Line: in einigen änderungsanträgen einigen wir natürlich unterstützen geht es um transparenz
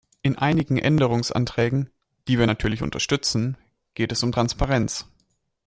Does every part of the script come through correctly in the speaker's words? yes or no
no